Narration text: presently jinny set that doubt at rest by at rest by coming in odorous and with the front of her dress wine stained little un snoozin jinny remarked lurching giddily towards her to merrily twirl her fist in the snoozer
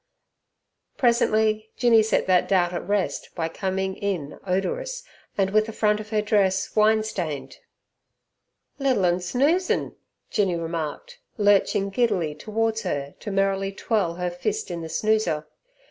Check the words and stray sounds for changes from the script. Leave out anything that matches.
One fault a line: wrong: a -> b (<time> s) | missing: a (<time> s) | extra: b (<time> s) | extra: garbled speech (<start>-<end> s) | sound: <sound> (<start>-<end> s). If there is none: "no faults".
missing: at rest by (3.5 s)